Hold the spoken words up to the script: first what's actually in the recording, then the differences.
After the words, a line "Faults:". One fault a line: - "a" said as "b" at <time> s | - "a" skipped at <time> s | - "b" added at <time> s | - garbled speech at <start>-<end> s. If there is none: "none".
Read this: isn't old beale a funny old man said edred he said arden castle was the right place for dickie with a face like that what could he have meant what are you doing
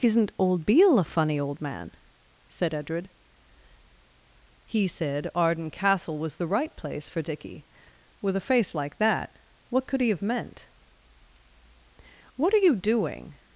isn't old beale a funny old man said edred he said arden castle was the right place for dickie with a face like that what could he have meant what are you doing
Faults:
none